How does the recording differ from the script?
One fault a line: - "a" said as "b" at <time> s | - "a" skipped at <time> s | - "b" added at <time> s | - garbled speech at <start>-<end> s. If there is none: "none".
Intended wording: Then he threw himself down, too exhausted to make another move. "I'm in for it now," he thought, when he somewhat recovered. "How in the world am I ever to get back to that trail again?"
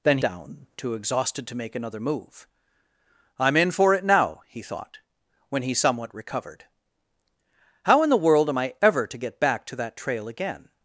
- "he threw himself" skipped at 0.2 s